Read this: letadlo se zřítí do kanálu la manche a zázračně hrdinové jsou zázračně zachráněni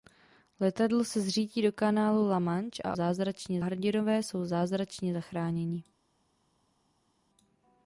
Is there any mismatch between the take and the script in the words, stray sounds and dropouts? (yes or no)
no